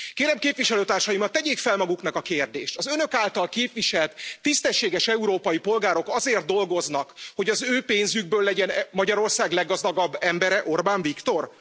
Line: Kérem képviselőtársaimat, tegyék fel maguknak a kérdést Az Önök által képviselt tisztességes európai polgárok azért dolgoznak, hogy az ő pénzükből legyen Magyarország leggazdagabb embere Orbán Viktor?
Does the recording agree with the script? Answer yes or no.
yes